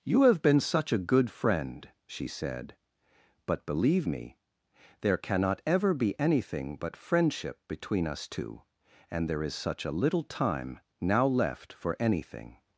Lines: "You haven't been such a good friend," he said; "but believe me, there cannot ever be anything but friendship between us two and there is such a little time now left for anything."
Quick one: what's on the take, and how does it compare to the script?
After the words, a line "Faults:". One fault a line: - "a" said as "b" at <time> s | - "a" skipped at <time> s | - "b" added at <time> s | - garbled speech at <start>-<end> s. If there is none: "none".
"You have been such a good friend," she said; "but believe me, there cannot ever be anything but friendship between us two and there is such a little time now left for anything."
Faults:
- "haven't" said as "have" at 0.2 s
- "he" said as "she" at 2.1 s